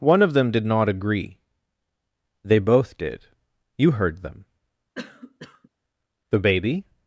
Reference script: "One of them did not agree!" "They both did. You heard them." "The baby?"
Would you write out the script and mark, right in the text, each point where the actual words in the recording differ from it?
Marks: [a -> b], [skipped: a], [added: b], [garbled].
"One of them did not agree!" "They both did. You heard them." "The baby?"